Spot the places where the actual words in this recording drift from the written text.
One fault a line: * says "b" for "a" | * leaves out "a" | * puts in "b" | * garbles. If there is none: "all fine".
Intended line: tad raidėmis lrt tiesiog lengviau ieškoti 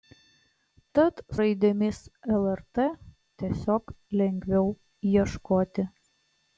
all fine